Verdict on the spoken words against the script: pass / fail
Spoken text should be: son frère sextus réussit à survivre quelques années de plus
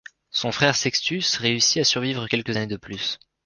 pass